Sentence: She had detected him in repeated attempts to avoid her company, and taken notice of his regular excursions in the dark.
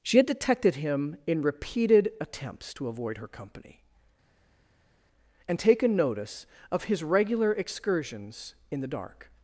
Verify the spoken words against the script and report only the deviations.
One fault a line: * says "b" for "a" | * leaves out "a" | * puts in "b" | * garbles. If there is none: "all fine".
all fine